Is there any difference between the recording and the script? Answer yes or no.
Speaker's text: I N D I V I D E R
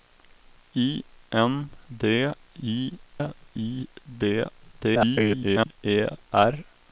yes